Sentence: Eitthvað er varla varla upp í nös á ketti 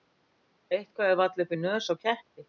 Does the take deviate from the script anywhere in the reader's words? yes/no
yes